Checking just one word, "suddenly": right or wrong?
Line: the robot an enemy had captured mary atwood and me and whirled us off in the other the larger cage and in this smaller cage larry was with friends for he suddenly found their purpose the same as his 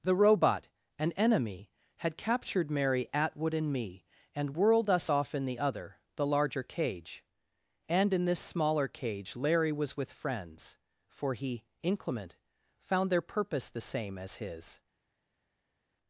wrong